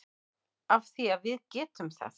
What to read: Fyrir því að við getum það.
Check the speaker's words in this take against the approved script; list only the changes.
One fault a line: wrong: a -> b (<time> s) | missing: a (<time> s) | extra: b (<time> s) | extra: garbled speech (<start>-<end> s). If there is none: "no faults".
wrong: Fyrir -> Af (0.8 s)